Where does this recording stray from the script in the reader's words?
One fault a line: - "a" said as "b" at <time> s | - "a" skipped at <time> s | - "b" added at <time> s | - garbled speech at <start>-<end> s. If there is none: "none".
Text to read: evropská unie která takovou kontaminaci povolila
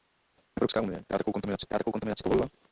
- "která takovou kontaminaci" added at 1.6 s